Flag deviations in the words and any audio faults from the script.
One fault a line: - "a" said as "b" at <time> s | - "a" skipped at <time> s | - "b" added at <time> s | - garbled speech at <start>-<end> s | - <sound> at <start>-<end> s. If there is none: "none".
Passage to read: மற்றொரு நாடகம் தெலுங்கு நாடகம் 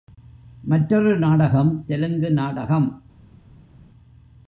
none